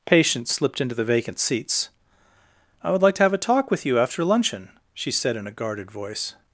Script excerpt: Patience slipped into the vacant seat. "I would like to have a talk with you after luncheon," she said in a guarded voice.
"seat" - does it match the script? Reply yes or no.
no